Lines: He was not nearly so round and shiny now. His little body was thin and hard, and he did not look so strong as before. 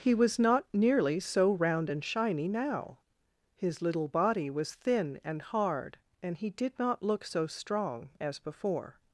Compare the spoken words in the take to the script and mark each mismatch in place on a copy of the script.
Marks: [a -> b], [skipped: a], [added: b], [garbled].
He was not nearly so round and shiny now. His little body was thin and hard, and he did not look so strong as before.